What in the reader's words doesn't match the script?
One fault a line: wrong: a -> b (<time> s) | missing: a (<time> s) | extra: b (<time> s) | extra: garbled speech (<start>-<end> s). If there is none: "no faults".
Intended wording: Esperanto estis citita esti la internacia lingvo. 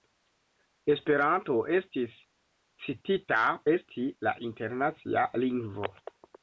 no faults